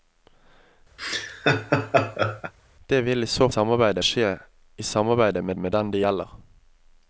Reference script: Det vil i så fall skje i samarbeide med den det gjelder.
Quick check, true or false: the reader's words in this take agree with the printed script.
false